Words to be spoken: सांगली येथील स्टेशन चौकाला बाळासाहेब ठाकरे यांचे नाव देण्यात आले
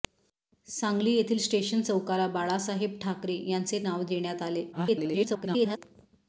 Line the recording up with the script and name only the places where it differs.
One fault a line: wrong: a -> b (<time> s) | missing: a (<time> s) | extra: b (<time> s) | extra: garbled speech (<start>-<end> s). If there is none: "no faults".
extra: garbled speech (4.7-5.8 s)